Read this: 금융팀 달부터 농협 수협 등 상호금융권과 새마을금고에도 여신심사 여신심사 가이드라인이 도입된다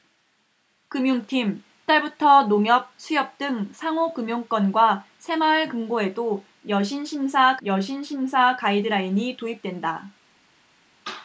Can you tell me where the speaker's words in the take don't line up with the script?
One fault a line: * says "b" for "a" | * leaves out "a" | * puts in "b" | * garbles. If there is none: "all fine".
all fine